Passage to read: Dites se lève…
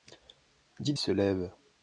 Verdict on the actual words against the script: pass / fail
pass